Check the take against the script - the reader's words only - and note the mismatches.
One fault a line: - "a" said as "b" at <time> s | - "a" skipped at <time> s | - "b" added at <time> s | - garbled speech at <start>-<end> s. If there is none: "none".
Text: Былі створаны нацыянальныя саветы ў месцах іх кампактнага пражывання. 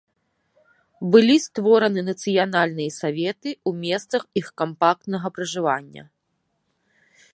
none